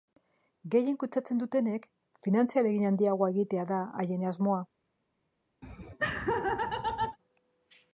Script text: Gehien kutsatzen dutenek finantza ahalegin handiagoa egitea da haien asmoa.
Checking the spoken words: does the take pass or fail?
pass